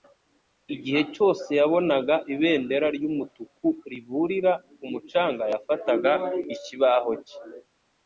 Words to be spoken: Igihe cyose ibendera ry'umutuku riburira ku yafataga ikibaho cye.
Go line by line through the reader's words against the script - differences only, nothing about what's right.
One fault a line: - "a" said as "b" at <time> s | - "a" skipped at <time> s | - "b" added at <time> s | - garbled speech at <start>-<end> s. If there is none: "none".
- "yabonaga" added at 1.6 s
- "mucanga" added at 4.9 s